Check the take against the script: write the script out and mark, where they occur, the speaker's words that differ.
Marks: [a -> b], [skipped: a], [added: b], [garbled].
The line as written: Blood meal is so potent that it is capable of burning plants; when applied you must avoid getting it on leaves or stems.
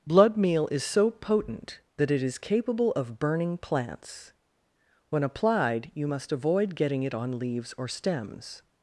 Blood meal is so potent that it is capable of burning plants; when applied you must avoid getting it on leaves or stems.